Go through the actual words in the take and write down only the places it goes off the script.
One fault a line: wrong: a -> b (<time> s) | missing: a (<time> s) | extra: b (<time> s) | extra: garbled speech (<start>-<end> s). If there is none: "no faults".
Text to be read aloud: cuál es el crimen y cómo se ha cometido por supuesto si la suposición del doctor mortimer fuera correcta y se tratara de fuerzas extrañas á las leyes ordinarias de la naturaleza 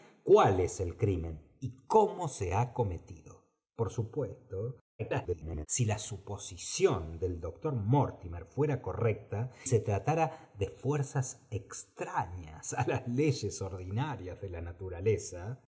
extra: garbled speech (5.0-5.7 s)
missing: y (9.5 s)